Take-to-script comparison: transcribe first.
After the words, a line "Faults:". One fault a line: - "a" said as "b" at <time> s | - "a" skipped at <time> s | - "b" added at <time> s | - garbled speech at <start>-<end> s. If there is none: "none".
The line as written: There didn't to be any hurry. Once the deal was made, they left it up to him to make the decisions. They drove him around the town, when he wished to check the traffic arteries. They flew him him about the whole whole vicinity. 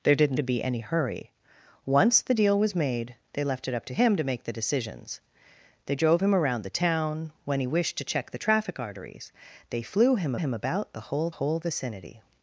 There didn't to be any hurry. Once the deal was made, they left it up to him to make the decisions. They drove him around the town, when he wished to check the traffic arteries. They flew him him about the whole whole vicinity.
Faults:
none